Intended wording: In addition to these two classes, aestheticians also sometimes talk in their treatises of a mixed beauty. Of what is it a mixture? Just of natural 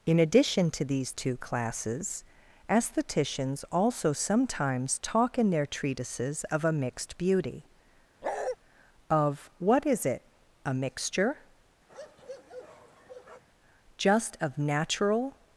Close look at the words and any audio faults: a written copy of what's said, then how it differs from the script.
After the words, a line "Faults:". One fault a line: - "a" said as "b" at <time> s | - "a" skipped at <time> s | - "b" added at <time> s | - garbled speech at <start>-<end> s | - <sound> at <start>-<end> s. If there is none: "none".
In addition to these two classes, aestheticians also sometimes talk in their treatises of a mixed beauty. Of what is it a mixture? Just of natural
Faults:
- bark at 8.2-8.6 s
- bark at 11.9-13.4 s